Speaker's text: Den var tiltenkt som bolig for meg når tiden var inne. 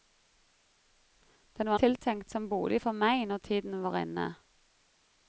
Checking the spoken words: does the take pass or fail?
pass